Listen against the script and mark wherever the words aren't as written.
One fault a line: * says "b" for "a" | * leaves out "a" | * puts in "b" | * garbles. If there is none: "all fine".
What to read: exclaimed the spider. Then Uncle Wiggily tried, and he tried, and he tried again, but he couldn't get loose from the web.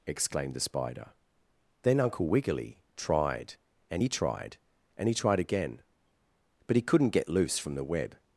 all fine